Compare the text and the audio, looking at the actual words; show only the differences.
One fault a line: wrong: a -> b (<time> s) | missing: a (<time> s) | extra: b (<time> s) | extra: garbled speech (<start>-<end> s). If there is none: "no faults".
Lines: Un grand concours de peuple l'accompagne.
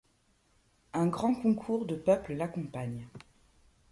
no faults